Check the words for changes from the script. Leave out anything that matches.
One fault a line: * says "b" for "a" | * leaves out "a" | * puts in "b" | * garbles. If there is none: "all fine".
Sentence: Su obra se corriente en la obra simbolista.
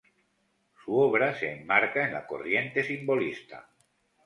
* says "enmarca" for "corriente"
* says "corriente" for "obra"